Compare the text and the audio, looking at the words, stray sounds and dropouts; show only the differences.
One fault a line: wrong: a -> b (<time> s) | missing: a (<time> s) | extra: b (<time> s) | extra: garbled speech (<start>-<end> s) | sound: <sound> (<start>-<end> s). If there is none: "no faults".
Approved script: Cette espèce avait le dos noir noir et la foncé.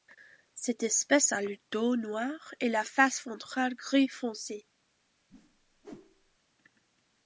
wrong: avait -> a (1.3 s)
missing: noir (2.5 s)
extra: face ventrale gris (2.8 s)
sound: whoosh (5.3-6.4 s)